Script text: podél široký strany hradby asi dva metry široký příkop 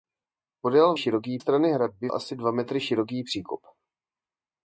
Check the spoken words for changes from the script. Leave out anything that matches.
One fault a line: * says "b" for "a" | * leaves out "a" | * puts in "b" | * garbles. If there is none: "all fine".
all fine